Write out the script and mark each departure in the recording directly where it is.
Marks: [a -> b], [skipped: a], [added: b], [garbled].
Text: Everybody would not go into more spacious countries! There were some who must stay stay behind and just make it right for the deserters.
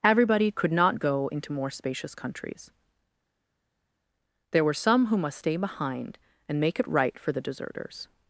Everybody [would -> could] not go into more spacious countries! There were some who must stay [skipped: stay] behind and [skipped: just] make it right for the deserters.